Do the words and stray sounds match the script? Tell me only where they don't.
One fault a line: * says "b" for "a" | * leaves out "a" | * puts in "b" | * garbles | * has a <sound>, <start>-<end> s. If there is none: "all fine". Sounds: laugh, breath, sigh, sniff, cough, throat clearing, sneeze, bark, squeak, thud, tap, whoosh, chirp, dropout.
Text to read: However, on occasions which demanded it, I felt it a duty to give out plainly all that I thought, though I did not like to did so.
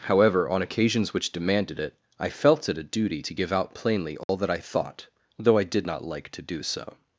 * has a dropout, 4.2-4.3 s
* says "do" for "did"